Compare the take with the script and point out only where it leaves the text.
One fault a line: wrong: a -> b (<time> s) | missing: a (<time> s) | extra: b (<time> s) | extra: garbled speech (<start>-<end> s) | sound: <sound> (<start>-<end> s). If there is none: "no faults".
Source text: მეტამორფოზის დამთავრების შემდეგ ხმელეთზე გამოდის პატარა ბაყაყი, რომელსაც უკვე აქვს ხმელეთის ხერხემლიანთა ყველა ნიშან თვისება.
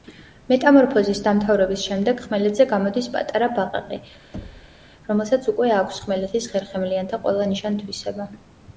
sound: thud (4.3-4.9 s)